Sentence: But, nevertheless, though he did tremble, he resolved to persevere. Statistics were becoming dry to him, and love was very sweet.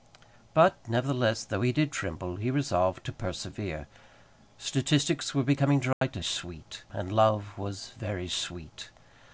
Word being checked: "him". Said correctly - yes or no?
no